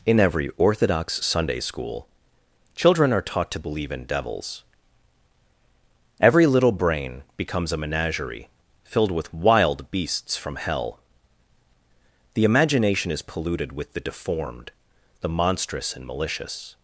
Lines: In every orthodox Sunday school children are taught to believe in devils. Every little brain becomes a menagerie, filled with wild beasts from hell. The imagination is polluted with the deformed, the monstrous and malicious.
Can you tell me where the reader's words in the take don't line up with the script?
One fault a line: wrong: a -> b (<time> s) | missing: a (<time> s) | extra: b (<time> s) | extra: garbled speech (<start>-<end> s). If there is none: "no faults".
no faults